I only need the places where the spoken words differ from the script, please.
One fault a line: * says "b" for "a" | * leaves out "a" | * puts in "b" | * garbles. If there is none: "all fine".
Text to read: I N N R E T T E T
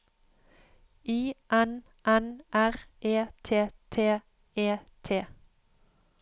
all fine